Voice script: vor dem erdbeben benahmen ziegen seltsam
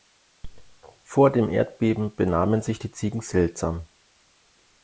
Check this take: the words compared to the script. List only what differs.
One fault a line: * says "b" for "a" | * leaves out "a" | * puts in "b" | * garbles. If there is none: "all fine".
* puts in "sich die"